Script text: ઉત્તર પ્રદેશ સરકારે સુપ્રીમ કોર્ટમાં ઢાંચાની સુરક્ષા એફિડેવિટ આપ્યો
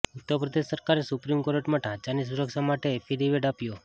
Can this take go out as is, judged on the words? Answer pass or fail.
fail